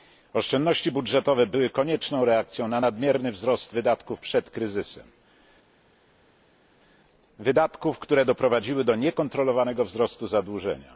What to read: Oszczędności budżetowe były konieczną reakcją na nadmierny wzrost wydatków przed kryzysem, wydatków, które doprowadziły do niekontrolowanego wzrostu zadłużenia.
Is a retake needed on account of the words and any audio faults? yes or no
no